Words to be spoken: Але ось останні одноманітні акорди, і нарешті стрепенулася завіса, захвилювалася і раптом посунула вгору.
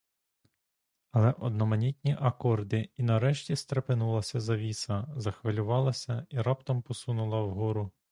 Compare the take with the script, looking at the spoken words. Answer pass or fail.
fail